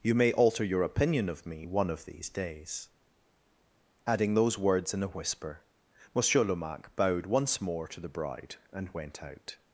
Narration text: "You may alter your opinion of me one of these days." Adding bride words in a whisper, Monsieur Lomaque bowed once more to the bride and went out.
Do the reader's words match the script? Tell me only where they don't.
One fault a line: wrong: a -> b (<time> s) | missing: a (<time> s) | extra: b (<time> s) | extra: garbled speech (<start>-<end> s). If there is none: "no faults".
wrong: bride -> those (4.3 s)